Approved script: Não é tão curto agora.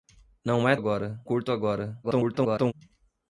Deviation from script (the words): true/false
true